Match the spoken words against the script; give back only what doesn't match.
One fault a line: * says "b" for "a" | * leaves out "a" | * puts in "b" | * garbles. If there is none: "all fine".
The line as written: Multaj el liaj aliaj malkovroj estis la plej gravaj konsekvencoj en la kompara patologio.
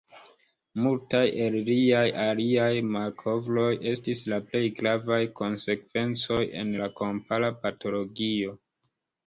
all fine